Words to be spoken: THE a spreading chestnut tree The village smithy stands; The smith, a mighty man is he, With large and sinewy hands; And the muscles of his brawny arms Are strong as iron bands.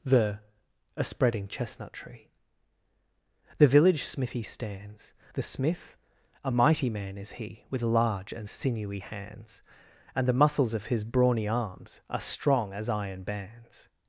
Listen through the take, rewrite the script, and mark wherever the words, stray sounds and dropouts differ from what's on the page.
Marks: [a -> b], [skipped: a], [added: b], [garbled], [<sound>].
THE a spreading chestnut tree The village smithy stands; The smith, a mighty man is he, With large and sinewy hands; And the muscles of his brawny arms Are strong as iron bands.